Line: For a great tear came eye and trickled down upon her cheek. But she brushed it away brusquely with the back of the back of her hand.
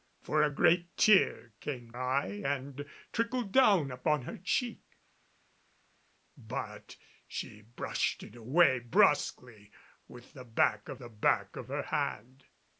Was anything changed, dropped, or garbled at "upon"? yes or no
no